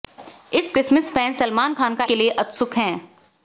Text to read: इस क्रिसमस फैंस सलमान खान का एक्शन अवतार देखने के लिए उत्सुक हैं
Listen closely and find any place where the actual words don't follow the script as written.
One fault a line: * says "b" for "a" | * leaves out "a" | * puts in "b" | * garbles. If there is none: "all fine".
* leaves out "एक्शन अवतार देखने"